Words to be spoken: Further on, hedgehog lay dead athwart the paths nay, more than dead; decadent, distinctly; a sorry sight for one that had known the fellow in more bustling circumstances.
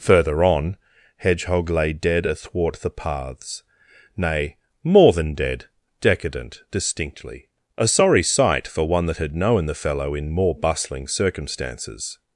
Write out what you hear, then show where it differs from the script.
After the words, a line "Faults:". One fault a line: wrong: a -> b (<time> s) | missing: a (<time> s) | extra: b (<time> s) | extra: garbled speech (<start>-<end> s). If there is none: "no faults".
Further on, hedgehog lay dead athwart the paths nay, more than dead; decadent, distinctly; a sorry sight for one that had known the fellow in more bustling circumstances.
Faults:
no faults